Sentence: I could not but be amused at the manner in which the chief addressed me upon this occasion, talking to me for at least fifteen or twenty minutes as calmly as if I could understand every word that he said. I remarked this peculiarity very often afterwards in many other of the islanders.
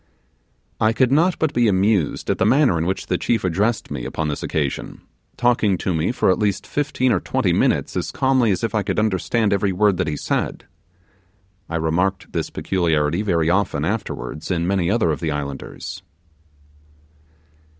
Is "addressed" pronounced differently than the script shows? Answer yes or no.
no